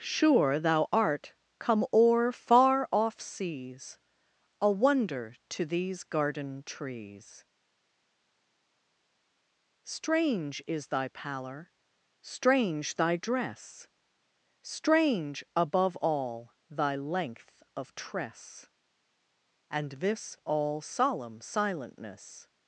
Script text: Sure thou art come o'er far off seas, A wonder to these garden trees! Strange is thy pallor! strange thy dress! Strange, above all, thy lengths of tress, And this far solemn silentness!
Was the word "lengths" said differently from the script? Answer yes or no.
yes